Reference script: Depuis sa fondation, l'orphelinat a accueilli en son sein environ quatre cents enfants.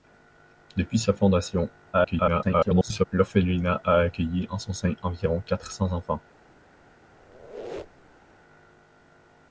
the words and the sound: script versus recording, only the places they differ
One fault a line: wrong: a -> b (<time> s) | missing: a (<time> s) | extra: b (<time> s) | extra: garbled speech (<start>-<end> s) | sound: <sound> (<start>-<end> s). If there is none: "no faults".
extra: garbled speech (1.9-3.1 s)
sound: squeak (7.2-8.3 s)